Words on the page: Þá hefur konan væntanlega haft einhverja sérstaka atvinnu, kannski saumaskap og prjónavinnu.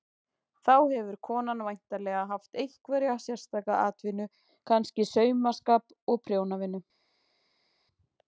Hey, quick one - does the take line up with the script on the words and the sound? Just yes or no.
yes